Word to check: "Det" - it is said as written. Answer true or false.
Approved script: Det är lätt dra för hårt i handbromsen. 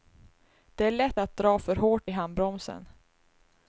true